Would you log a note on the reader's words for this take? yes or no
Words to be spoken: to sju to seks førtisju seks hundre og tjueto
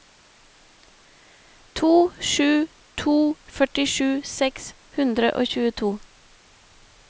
yes